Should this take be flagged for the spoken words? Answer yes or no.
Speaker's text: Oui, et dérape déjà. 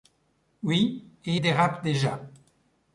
no